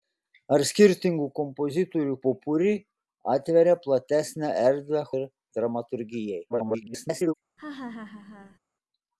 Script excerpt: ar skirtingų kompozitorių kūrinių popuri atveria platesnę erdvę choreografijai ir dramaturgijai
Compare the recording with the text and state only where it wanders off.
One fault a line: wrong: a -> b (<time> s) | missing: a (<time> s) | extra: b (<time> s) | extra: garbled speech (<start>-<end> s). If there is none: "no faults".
missing: kūrinių (2.1 s)
missing: choreografijai (5.1 s)
extra: garbled speech (6.5-7.3 s)